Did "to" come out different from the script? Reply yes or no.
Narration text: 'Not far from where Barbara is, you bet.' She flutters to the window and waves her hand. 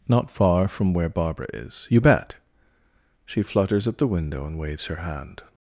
yes